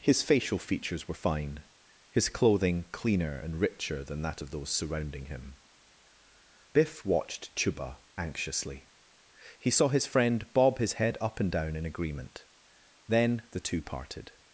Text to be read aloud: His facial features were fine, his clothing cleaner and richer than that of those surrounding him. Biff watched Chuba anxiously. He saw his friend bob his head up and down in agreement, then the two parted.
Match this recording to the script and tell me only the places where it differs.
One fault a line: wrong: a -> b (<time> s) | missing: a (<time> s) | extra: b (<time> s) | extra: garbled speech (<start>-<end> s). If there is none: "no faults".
no faults